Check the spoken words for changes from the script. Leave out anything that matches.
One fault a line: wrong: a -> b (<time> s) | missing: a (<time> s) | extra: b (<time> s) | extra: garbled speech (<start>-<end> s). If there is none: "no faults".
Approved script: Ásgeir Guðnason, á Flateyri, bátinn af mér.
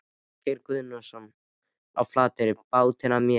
no faults